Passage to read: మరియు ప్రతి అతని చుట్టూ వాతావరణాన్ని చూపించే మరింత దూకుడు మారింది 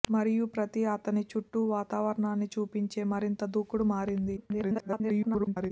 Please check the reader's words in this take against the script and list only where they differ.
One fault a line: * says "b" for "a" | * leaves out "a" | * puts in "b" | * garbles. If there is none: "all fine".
* garbles